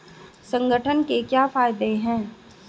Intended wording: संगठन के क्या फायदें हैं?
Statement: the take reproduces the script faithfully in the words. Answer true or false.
true